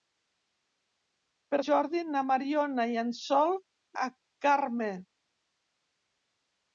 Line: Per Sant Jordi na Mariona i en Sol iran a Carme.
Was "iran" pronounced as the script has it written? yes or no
no